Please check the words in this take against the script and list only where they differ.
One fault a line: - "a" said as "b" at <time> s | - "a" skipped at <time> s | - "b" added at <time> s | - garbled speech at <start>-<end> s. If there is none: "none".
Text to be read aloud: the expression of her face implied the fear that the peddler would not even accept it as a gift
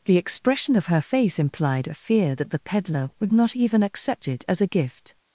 - "the" said as "a" at 1.9 s